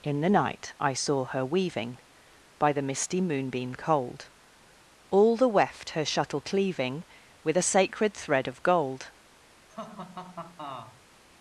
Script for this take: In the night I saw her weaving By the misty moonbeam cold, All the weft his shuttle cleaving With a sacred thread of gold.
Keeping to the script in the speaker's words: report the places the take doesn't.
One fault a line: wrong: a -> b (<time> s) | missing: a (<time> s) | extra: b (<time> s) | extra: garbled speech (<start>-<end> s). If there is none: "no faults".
wrong: his -> her (5.9 s)